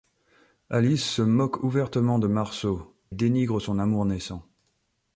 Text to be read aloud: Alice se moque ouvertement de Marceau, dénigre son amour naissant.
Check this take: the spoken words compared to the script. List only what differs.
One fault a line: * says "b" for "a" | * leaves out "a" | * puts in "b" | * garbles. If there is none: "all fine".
all fine